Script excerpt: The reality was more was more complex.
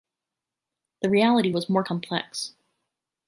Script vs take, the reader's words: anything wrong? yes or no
yes